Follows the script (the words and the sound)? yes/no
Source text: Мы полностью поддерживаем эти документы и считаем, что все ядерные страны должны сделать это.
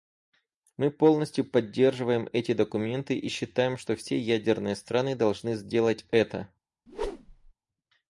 no